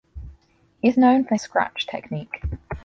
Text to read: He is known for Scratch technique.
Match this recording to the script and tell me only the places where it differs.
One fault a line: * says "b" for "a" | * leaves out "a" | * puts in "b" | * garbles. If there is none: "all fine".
all fine